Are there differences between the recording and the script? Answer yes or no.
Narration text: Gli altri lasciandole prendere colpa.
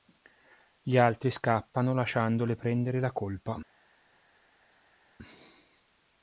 yes